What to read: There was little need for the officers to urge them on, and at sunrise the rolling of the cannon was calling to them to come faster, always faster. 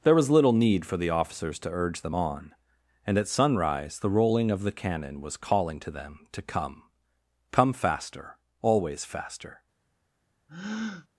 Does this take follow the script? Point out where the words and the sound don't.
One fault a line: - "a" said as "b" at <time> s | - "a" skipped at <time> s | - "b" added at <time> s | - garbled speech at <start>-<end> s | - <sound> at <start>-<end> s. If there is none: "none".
- "come" added at 7.5 s
- breath at 10.5-11.1 s